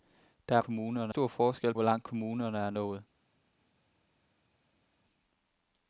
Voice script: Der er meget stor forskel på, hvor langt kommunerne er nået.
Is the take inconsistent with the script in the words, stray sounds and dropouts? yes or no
yes